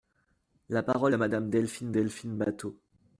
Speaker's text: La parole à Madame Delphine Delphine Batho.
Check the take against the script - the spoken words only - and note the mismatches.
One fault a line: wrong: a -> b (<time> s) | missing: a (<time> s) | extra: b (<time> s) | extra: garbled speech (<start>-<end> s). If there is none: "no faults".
no faults